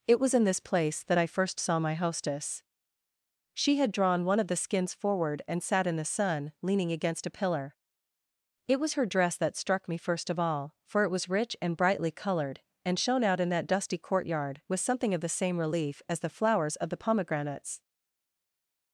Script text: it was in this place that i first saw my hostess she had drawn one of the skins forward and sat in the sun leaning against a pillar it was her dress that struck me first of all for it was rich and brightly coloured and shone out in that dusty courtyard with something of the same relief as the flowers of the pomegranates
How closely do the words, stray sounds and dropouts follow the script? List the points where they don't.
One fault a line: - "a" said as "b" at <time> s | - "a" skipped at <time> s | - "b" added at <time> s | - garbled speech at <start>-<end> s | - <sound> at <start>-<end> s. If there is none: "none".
none